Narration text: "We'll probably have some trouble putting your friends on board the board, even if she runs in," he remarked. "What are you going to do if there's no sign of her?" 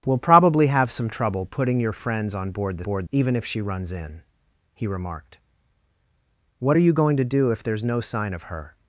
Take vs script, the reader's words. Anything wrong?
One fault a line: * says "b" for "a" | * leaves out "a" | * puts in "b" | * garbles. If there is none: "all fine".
all fine